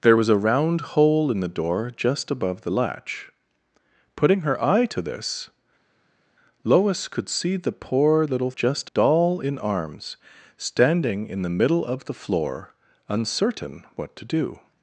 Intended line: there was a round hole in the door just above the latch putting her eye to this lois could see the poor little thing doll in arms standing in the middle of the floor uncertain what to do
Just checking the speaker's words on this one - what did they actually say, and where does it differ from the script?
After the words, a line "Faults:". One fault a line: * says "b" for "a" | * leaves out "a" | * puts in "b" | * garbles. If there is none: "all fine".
there was a round hole in the door just above the latch putting her eye to this lois could see the poor little just doll in arms standing in the middle of the floor uncertain what to do
Faults:
* says "just" for "thing"